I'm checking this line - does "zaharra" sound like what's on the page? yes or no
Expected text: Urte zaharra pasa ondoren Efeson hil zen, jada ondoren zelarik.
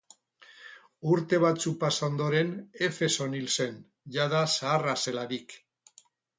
no